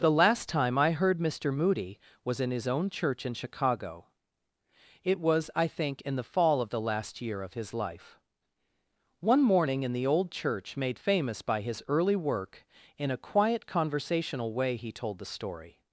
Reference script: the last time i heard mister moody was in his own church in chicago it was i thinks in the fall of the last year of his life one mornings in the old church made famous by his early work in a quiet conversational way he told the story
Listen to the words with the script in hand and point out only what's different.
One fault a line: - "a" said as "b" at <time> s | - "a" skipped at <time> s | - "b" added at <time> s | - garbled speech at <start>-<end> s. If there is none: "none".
- "thinks" said as "think" at 5.7 s
- "mornings" said as "morning" at 9.4 s